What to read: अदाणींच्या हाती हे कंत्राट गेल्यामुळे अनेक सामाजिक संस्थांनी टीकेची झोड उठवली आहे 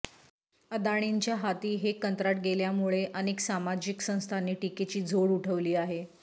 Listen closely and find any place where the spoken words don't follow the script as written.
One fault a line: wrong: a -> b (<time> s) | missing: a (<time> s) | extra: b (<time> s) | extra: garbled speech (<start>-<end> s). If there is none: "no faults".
no faults